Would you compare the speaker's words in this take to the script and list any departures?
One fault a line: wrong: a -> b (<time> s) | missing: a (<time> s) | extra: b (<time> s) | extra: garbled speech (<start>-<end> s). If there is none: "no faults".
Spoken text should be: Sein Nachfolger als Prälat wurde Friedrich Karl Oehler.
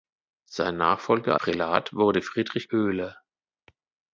missing: als (1.4 s)
missing: Karl (2.7 s)